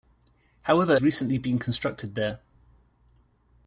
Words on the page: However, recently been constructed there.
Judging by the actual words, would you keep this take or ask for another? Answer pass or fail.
pass